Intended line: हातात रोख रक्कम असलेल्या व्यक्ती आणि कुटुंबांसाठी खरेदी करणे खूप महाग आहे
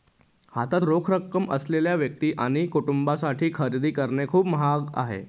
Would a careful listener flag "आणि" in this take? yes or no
no